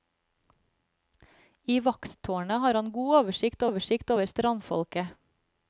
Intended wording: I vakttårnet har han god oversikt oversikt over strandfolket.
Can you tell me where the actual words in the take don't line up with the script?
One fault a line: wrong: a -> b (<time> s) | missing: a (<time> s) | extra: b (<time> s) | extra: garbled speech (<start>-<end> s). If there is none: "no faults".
no faults